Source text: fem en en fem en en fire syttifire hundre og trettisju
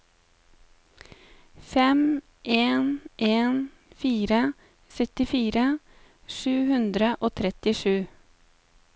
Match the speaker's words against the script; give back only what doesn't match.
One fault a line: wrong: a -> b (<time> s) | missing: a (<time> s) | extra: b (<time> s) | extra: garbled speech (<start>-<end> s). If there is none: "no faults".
missing: fem en en (3.6 s)
extra: sju (6.4 s)